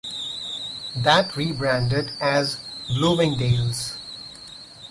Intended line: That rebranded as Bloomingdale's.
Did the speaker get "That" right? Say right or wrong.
right